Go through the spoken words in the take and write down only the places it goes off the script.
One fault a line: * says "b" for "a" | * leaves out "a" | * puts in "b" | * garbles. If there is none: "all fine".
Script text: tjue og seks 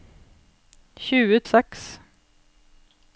all fine